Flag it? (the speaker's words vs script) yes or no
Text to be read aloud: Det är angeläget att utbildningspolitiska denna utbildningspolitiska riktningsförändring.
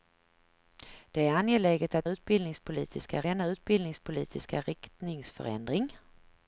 no